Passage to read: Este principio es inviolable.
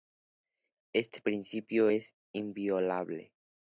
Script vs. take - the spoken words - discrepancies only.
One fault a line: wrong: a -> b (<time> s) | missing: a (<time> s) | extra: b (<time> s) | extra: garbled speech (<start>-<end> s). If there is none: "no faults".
no faults